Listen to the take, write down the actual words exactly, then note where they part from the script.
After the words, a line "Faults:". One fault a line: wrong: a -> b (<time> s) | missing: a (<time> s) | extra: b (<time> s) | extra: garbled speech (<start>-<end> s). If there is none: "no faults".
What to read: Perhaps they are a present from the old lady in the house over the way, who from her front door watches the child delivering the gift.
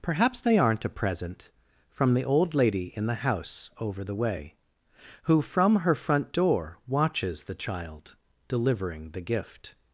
Perhaps they aren't a present from the old lady in the house over the way, who from her front door watches the child delivering the gift.
Faults:
wrong: are -> aren't (0.6 s)